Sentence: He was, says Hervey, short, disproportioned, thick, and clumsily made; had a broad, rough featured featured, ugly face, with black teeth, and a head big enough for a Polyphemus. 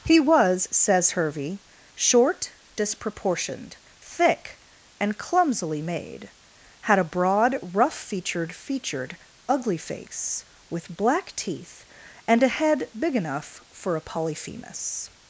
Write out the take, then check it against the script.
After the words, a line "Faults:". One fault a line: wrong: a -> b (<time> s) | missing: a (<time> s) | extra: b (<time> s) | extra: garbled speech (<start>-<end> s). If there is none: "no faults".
He was, says Hervey, short, disproportioned, thick, and clumsily made; had a broad, rough featured featured, ugly face, with black teeth, and a head big enough for a Polyphemus.
Faults:
no faults